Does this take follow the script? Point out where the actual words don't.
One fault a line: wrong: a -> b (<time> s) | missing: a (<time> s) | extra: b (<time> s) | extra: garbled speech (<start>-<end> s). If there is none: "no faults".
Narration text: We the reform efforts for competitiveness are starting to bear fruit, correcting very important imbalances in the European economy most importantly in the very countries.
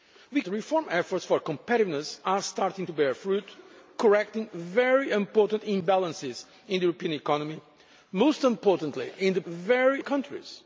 no faults